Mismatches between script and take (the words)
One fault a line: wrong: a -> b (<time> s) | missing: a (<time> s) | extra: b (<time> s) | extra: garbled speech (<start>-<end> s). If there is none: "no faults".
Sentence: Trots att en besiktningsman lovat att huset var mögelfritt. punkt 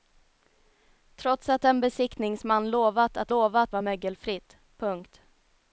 wrong: huset -> lovat (3.3 s)